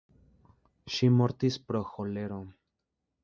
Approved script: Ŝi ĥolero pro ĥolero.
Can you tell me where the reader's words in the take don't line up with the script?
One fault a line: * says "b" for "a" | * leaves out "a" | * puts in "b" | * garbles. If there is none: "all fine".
* says "mortis" for "ĥolero"